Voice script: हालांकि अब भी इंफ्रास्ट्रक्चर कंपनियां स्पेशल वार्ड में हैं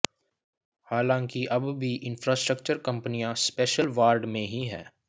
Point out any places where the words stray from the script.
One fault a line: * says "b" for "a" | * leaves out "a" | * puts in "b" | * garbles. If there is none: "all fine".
* puts in "ही"